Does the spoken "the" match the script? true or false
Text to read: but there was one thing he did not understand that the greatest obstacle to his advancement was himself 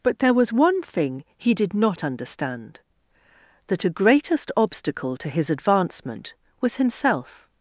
false